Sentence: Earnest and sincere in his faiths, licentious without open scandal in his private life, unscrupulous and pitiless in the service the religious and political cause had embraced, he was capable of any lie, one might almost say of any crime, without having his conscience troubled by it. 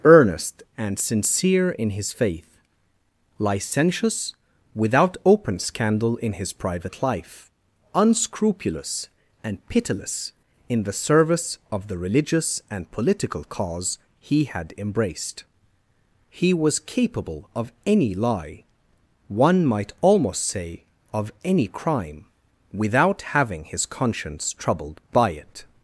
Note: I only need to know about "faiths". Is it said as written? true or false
false